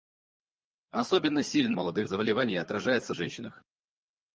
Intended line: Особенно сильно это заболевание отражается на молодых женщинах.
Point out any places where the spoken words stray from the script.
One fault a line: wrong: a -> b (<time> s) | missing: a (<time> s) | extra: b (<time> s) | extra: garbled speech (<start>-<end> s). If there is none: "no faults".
wrong: это -> молодых (1.7 s)
missing: на молодых (3.2 s)